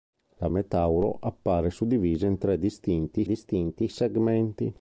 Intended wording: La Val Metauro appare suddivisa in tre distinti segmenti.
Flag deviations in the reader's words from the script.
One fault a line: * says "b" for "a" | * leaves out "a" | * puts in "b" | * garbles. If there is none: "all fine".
* leaves out "Val"
* puts in "distinti"